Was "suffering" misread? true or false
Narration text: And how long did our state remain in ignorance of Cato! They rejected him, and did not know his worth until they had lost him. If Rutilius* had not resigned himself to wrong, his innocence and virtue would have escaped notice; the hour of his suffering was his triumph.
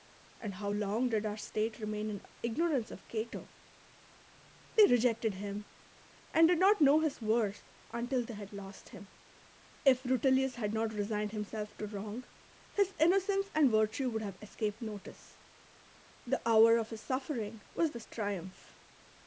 false